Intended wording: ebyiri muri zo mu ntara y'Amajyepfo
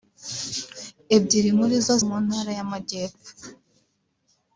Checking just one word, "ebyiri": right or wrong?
right